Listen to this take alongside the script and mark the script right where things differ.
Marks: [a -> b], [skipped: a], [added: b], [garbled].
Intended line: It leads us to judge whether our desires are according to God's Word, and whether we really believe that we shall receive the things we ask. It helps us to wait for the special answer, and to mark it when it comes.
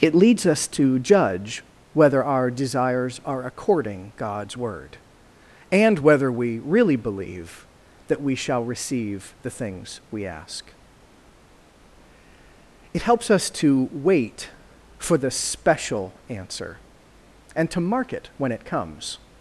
It leads us to judge whether our desires are according [skipped: to] God's Word, and whether we really believe that we shall receive the things we ask. It helps us to wait for the special answer, and to mark it when it comes.